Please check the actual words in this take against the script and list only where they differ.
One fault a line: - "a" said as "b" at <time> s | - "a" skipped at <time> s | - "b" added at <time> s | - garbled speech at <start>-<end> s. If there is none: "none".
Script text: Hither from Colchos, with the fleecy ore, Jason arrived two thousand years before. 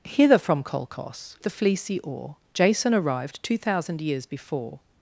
- "with" skipped at 1.4 s